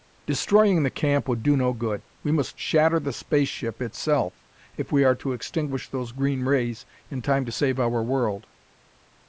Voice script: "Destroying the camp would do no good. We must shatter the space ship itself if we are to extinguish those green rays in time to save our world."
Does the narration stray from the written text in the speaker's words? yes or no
no